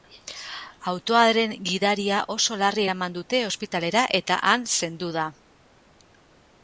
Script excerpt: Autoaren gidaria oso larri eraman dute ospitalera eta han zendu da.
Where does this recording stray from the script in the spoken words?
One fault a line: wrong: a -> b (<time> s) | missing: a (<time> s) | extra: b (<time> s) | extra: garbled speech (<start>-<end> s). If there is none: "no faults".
no faults